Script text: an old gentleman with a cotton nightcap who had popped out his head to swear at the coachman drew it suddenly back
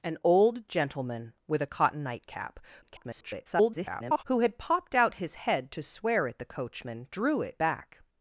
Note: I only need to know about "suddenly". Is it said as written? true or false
false